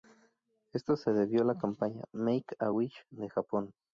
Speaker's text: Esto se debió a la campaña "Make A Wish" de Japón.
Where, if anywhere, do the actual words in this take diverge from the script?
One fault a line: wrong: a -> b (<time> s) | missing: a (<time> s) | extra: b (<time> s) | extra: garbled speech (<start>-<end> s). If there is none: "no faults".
no faults